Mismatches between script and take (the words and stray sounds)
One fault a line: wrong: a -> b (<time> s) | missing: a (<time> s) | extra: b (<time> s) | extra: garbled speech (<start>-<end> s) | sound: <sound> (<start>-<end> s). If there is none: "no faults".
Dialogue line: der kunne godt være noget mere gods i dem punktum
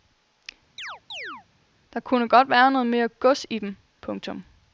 sound: chirp (0.8-1.5 s)